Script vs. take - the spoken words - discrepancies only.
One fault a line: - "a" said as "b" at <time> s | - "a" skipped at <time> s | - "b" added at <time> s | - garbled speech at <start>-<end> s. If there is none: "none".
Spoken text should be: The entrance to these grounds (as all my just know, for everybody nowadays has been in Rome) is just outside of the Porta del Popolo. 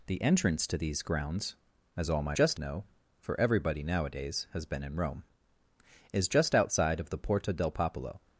none